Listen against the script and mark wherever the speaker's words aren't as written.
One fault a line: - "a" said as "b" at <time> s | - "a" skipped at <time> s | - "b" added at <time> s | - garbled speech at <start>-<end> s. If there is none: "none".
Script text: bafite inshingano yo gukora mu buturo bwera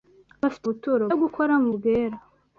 - "inshingano" said as "buturo" at 0.7 s
- "buturo" skipped at 1.7 s